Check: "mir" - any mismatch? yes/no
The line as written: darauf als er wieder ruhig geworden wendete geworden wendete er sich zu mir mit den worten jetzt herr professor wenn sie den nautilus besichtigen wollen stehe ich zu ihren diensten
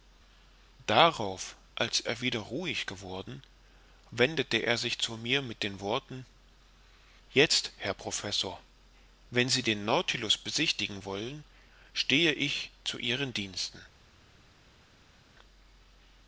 no